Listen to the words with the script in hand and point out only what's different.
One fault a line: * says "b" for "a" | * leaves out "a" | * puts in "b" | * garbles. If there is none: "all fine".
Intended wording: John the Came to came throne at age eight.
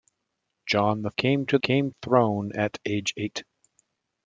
all fine